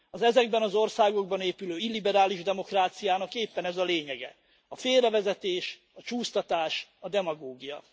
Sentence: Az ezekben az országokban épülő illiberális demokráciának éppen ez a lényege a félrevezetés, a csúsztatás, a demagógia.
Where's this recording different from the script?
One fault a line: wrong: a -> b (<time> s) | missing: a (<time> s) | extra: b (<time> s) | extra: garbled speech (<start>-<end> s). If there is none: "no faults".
no faults